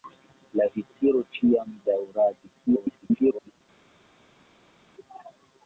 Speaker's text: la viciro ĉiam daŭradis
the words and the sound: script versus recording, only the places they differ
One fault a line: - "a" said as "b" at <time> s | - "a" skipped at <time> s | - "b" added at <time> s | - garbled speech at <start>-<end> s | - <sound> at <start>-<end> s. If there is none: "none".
- garbled speech at 2.7-3.6 s